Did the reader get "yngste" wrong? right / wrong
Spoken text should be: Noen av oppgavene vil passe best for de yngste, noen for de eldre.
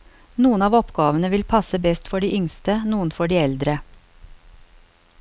right